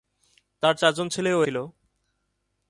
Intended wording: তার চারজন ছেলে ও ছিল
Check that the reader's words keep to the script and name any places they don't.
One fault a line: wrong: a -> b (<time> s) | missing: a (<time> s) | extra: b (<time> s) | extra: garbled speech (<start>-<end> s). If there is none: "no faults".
no faults